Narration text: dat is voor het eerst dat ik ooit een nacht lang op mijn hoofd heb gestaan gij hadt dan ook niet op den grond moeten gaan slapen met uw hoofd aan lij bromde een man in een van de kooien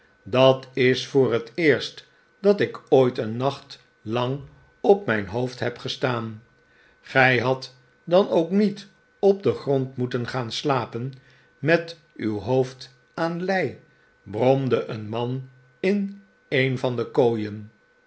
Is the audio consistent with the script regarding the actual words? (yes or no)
yes